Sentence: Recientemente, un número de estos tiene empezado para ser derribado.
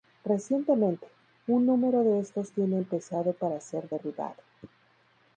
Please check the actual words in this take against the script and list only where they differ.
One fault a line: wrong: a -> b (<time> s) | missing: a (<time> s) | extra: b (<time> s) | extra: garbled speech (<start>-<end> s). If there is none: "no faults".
no faults